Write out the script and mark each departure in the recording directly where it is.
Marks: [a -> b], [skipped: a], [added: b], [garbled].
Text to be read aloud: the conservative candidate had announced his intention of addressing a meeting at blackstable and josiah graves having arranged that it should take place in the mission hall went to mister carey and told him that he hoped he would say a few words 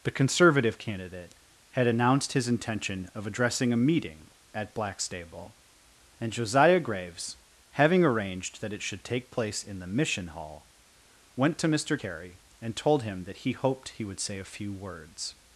the conservative candidate had announced his intention of addressing a meeting at blackstable and josiah graves having arranged that it should take place in the mission hall went to mister carey and told him that he hoped he would say a few words